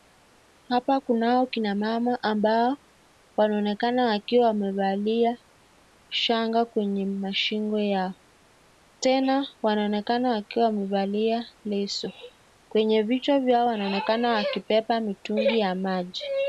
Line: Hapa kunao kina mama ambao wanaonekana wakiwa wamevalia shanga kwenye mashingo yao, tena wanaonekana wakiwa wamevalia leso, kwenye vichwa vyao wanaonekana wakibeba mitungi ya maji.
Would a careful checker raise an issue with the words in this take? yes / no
no